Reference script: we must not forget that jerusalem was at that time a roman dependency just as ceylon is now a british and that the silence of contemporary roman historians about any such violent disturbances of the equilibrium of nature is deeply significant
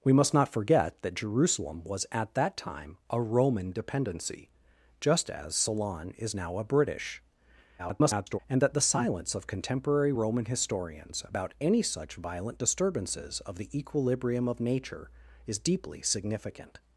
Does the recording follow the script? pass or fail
fail